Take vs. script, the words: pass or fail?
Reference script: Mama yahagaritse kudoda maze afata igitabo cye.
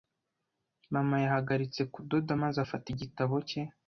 pass